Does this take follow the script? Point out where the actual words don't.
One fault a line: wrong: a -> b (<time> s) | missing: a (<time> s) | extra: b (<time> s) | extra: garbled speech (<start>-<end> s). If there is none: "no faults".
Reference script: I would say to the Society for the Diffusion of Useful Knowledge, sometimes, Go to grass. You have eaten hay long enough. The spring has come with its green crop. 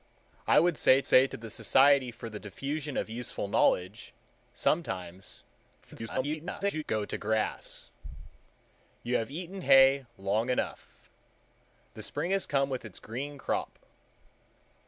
extra: say (1.0 s)
extra: garbled speech (5.8-6.8 s)